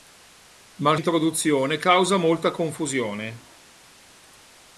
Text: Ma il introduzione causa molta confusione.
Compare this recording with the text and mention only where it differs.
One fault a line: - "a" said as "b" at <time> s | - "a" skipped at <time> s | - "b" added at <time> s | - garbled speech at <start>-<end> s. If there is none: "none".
none